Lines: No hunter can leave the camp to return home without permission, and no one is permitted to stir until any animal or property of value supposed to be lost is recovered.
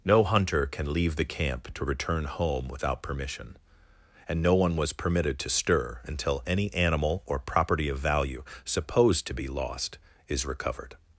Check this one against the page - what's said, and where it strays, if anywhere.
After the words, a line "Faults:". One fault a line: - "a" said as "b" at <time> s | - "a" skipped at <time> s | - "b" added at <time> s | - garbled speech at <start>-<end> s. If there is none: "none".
No hunter can leave the camp to return home without permission, and no one was permitted to stir until any animal or property of value supposed to be lost is recovered.
Faults:
- "is" said as "was" at 4.8 s